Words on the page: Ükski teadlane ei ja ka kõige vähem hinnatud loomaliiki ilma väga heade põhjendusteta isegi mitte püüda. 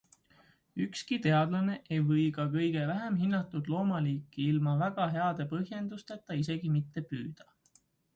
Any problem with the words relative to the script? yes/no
yes